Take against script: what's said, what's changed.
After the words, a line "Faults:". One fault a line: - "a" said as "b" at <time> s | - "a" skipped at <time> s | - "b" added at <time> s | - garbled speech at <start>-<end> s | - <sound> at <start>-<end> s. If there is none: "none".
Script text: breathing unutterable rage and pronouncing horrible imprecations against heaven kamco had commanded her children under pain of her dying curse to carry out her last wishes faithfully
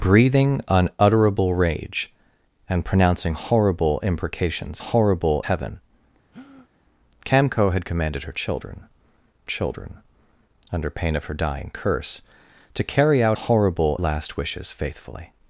breathing unutterable rage and pronouncing horrible imprecations horrible heaven kamco had commanded her children children under pain of her dying curse to carry out horrible last wishes faithfully
Faults:
- "against" said as "horrible" at 4.8 s
- breath at 6.3-6.7 s
- "children" added at 9.4 s
- "her" said as "horrible" at 13.3 s